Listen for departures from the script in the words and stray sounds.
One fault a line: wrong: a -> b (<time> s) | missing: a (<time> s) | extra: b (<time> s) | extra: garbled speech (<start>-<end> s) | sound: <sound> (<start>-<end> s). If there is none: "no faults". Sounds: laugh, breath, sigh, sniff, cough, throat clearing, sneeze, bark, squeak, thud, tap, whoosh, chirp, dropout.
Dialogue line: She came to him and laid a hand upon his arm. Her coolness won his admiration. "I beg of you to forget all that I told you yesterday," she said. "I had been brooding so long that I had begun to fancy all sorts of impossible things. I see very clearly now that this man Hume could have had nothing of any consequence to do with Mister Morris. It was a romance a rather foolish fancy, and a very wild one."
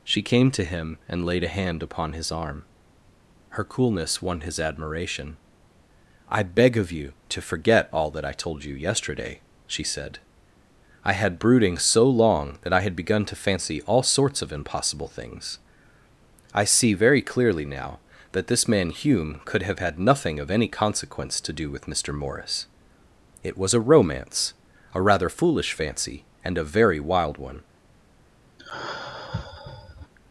missing: been (11.4 s)
sound: sigh (28.6-30.1 s)